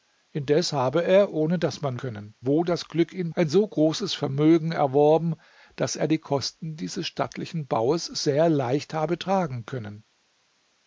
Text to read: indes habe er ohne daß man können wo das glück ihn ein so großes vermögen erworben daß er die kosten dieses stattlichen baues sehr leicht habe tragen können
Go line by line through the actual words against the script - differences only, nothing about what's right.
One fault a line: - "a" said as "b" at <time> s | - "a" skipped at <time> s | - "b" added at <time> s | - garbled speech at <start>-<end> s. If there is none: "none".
none